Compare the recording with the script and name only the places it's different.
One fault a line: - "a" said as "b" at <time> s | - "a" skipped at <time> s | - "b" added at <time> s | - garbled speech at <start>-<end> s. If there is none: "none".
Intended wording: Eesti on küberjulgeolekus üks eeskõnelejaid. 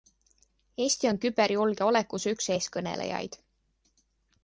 none